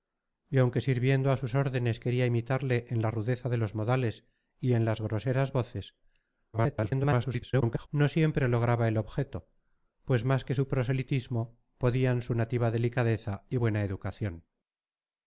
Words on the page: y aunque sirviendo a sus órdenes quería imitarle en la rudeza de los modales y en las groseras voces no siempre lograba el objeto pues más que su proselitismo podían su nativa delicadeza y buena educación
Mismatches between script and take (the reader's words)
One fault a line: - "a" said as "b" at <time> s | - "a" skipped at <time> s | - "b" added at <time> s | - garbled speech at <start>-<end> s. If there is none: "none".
- garbled speech at 6.5-7.9 s